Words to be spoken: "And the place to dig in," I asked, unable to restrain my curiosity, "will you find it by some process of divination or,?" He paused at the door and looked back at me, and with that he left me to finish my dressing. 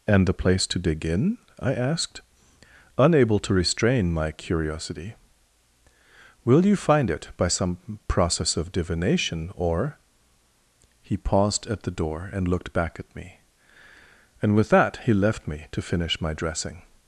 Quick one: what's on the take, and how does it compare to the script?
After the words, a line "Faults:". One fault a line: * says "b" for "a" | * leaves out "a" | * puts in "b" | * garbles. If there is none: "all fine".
"And the place to dig in," I asked, unable to restrain my curiosity, "will you find it by some process of divination or,?" He paused at the door and looked back at me, and with that he left me to finish my dressing.
Faults:
all fine